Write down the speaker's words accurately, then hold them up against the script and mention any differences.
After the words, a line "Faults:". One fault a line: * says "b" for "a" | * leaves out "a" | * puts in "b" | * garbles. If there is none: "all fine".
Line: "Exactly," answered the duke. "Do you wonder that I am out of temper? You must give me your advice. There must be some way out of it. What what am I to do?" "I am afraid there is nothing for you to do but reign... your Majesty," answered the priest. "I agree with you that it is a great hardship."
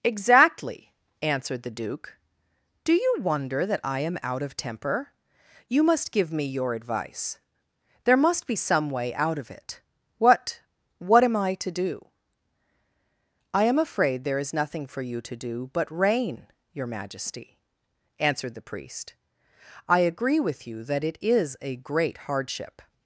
"Exactly," answered the duke. "Do you wonder that I am out of temper? You must give me your advice. There must be some way out of it. What what am I to do?" "I am afraid there is nothing for you to do but reign... your Majesty," answered the priest. "I agree with you that it is a great hardship."
Faults:
all fine